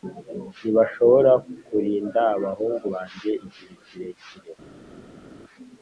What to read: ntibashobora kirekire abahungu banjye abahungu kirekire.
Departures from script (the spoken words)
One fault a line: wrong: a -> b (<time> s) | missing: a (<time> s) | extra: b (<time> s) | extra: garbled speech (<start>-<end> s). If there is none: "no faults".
wrong: kirekire -> kurinda (1.7 s)
wrong: abahungu -> igihe (3.5 s)